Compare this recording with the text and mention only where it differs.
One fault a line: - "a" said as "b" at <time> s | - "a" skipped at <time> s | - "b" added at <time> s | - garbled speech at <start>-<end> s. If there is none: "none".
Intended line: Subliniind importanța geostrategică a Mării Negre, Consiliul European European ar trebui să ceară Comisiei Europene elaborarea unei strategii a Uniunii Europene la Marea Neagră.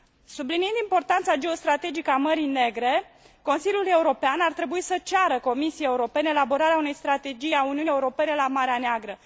- "European" skipped at 4.4 s